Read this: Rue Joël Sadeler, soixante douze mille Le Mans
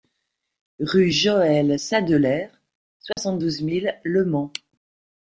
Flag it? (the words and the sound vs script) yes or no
yes